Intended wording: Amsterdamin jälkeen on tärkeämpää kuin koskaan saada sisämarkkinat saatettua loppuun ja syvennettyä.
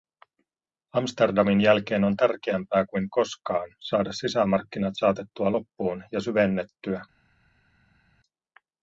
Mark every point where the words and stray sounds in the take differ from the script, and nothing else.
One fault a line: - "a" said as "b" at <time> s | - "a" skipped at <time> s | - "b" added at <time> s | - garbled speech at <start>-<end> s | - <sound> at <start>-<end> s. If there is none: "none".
none